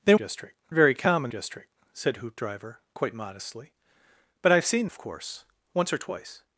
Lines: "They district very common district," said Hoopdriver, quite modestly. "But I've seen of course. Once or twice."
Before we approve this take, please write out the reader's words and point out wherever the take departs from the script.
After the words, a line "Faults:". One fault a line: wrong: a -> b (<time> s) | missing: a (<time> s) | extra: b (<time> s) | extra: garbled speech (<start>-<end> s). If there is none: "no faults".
"They district very common district," said Hoopdriver, quite modestly. "But I've seen of course. Once or twice."
Faults:
no faults